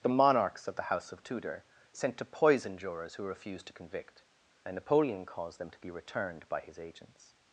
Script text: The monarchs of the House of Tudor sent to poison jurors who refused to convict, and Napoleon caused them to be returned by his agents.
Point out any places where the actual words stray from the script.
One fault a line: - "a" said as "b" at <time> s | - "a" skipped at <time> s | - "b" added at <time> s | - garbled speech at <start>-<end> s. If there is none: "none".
none